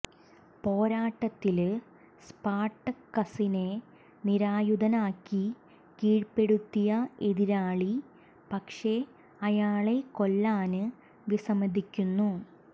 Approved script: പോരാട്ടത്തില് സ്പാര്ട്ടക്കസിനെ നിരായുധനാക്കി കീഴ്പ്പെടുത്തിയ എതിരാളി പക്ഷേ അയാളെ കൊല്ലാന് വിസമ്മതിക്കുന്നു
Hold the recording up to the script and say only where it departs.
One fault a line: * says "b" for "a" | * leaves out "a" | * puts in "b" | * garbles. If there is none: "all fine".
all fine